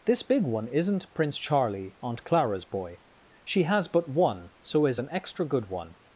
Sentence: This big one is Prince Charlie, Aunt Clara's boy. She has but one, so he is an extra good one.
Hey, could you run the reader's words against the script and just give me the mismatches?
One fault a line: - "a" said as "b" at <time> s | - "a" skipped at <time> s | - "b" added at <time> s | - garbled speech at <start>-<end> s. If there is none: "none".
- "is" said as "isn't" at 0.7 s
- "he" skipped at 4.8 s